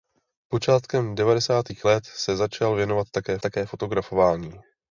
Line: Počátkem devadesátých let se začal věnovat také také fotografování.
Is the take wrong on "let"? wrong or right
right